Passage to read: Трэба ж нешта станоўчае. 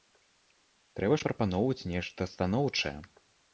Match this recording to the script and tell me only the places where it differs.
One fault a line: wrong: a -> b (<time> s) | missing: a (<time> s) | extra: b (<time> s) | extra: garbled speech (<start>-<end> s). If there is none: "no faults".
extra: прапаноўваць (1.3 s)